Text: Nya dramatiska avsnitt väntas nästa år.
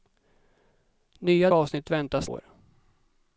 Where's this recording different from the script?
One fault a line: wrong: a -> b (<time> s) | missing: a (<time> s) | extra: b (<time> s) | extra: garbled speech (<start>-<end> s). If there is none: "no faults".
missing: dramatiska (1.5 s)
missing: nästa (2.3 s)